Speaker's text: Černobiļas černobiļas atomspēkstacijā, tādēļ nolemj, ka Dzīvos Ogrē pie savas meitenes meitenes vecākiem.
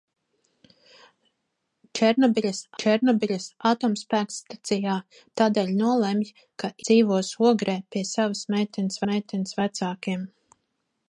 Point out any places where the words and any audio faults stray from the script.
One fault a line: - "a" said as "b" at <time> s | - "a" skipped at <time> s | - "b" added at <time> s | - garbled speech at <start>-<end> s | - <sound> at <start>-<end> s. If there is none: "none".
none